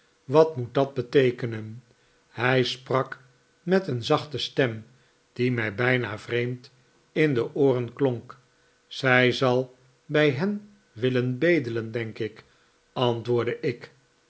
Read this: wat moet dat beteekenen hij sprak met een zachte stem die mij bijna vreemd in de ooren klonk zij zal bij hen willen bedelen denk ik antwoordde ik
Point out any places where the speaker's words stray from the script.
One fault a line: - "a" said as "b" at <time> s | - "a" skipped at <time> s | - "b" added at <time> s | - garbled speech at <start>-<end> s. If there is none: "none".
none